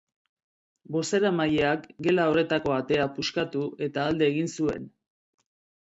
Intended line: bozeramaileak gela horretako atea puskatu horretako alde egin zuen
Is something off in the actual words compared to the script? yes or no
yes